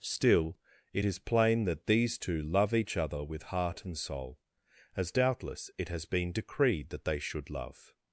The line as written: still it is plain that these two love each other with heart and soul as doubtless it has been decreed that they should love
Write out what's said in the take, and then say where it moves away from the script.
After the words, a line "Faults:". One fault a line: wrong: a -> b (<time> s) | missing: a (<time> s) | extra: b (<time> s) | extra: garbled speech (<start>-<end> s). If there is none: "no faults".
still it is plain that these two love each other with heart and soul as doubtless it has been decreed that they should love
Faults:
no faults